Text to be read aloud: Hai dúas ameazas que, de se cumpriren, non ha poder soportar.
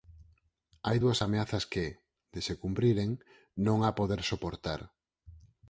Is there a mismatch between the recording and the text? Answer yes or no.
no